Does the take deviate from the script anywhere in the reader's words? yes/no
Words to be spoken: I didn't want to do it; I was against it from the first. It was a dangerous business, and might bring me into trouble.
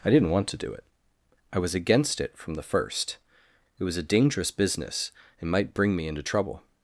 no